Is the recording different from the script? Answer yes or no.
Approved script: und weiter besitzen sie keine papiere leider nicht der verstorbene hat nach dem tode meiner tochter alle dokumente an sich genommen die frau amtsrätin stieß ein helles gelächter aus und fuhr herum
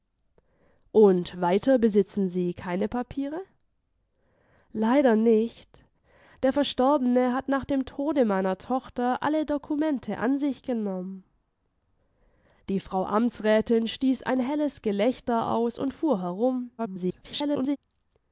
yes